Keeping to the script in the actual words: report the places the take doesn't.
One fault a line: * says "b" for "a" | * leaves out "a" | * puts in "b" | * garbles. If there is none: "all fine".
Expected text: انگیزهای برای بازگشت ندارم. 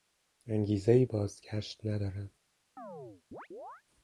* leaves out "برای"